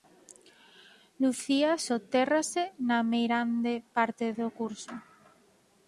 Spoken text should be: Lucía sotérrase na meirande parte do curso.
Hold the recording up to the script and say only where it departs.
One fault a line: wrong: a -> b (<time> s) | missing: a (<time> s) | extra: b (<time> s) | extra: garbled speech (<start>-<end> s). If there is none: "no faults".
no faults